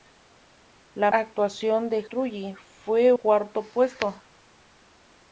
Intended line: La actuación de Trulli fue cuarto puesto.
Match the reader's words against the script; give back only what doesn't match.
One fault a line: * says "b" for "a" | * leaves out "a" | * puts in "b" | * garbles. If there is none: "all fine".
all fine